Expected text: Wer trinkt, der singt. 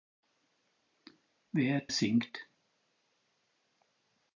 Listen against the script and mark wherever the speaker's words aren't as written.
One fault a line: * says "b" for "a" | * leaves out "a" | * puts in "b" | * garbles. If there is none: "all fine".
* leaves out "trinkt der"